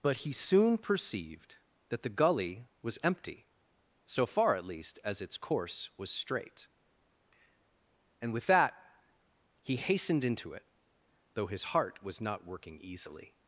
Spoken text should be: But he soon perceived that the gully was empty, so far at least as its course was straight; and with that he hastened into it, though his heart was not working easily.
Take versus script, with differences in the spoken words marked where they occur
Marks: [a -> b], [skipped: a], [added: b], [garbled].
But he soon perceived that the gully was empty, so far at least as its course was straight; and with that he hastened into it, though his heart was not working easily.